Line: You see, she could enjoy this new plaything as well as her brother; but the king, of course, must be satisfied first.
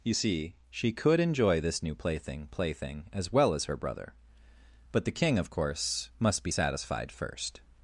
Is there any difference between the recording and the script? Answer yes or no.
yes